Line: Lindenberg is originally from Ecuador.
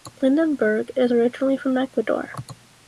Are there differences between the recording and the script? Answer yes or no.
no